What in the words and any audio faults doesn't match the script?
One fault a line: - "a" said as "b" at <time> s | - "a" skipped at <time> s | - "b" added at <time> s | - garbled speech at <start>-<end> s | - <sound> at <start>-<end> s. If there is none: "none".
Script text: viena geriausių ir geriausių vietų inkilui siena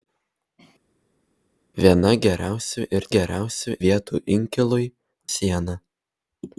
none